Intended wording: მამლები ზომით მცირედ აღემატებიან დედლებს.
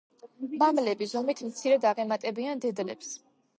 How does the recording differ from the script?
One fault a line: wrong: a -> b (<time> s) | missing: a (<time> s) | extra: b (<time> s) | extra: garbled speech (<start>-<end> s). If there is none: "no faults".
no faults